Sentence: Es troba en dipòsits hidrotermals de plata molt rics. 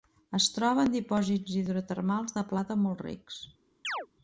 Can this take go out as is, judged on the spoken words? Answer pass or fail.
pass